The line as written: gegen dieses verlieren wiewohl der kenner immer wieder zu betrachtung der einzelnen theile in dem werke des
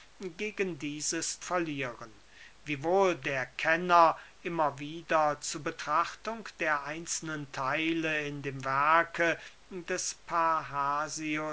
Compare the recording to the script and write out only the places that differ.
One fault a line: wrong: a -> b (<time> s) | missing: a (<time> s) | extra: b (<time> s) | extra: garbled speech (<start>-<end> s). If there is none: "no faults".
no faults